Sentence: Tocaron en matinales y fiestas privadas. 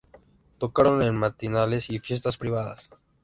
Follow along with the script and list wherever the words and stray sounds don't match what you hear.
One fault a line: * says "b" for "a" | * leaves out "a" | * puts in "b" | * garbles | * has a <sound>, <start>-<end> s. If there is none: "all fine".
all fine